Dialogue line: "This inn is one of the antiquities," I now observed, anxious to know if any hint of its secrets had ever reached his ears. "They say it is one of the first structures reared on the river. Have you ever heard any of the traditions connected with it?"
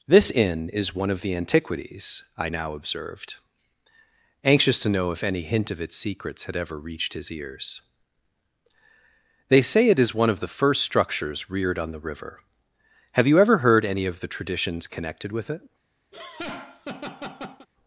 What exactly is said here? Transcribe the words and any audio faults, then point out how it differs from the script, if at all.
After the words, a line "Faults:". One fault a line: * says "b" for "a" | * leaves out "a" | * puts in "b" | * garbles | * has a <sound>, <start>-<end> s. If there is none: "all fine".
"This inn is one of the antiquities," I now observed, anxious to know if any hint of its secrets had ever reached his ears. "They say it is one of the first structures reared on the river. Have you ever heard any of the traditions connected with it?"
Faults:
* has a laugh, 16.1-17.7 s